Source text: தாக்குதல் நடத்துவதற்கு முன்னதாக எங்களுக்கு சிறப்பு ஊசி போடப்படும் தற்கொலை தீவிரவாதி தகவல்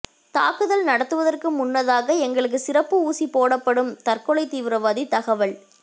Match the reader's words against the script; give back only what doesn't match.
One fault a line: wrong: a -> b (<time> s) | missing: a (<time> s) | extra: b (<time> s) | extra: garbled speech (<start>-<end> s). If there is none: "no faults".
no faults